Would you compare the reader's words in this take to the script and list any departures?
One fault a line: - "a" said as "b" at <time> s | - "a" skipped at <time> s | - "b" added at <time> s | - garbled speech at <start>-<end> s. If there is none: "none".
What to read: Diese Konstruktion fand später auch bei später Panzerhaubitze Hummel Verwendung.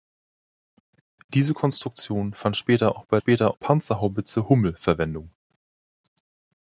none